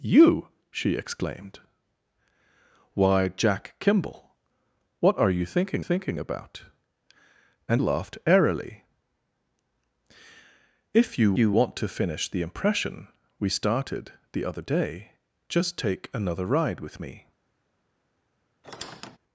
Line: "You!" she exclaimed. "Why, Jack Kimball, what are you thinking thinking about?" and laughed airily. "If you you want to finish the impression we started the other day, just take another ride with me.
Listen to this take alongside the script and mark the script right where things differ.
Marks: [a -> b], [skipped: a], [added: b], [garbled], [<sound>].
"You!" she exclaimed. "Why, Jack Kimball, what are you thinking thinking about?" and laughed airily. "If you you want to finish the impression we started the other day, just take another ride with me. [squeak]